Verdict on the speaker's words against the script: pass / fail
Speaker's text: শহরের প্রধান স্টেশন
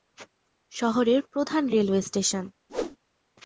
fail